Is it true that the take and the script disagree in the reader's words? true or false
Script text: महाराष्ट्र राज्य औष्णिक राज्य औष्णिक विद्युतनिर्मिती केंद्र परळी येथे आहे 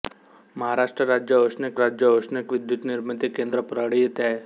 false